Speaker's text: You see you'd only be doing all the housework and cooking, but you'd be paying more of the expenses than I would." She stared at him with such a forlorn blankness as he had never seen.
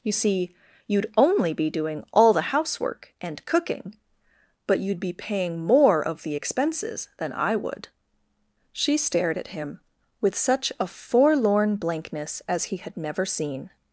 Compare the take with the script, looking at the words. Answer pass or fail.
pass